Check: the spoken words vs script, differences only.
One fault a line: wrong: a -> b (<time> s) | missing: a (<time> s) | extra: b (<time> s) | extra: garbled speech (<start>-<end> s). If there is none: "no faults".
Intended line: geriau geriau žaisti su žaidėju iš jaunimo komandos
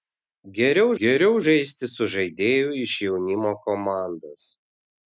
no faults